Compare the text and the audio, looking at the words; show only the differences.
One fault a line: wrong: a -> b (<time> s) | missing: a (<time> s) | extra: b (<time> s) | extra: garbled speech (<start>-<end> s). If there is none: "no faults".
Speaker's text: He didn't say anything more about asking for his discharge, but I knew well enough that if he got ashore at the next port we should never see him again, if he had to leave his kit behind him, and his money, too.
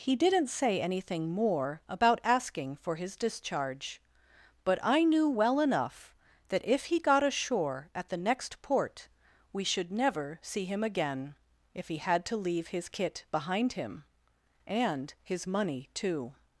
no faults